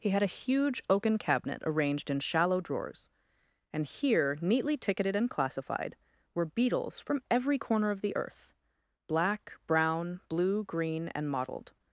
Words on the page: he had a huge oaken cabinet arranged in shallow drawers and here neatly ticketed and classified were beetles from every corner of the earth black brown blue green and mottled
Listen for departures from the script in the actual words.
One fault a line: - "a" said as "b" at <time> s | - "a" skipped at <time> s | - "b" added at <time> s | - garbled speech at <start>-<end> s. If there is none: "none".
none